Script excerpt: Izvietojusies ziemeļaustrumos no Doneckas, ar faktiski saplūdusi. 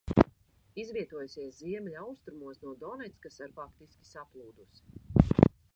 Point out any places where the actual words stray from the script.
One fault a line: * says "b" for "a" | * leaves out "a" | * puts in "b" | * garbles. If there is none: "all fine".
all fine